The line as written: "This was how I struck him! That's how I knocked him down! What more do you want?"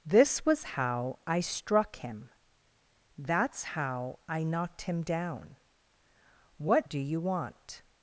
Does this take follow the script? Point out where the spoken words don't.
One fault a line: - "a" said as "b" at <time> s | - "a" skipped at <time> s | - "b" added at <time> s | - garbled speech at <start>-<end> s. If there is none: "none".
- "more" skipped at 6.9 s